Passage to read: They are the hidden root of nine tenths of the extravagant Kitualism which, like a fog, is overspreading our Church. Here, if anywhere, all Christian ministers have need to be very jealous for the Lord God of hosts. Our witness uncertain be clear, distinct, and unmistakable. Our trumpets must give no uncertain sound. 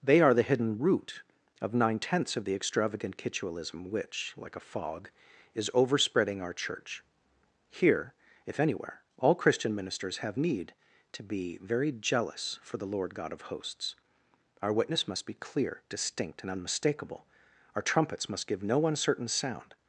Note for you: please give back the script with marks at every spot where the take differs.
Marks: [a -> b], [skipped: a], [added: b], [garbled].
They are the hidden root of nine tenths of the extravagant Kitualism which, like a fog, is overspreading our Church. Here, if anywhere, all Christian ministers have need to be very jealous for the Lord God of hosts. Our witness [uncertain -> must] be clear, distinct, and unmistakable. Our trumpets must give no uncertain sound.